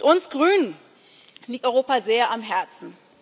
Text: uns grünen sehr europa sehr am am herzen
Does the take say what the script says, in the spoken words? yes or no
no